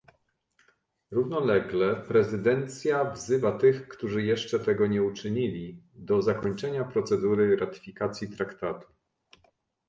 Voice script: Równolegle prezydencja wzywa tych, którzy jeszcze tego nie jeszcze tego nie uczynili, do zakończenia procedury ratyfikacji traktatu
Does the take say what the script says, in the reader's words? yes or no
no